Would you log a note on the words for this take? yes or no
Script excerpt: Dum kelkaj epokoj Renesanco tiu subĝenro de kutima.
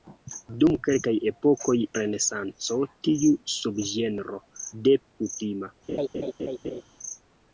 no